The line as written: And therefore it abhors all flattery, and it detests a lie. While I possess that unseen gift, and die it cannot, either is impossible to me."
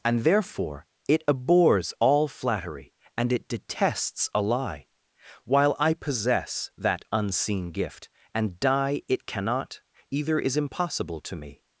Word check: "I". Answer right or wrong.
right